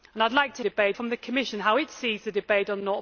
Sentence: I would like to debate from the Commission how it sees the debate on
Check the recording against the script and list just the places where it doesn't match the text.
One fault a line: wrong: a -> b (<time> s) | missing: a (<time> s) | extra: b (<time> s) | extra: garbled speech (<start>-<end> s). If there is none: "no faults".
no faults